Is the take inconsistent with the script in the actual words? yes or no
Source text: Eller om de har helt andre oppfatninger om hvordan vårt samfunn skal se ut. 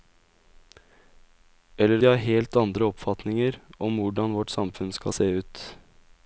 yes